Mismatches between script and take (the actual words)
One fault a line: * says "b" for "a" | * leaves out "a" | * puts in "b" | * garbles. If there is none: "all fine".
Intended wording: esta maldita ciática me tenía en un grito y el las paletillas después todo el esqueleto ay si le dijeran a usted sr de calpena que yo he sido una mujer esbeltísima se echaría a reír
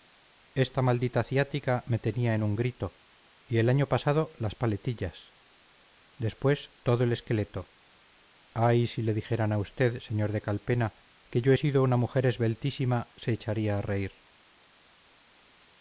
* puts in "año pasado"